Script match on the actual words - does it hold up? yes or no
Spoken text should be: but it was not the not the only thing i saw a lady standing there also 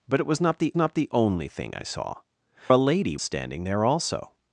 yes